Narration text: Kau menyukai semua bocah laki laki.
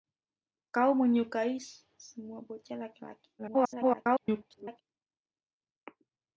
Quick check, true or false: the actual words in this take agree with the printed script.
false